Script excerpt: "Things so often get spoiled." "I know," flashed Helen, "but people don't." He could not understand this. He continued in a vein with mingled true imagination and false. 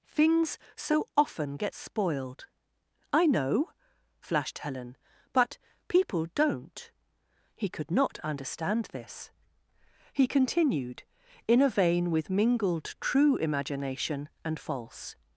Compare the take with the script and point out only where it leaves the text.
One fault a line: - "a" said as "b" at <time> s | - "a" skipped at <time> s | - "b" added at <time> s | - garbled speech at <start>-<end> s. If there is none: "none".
none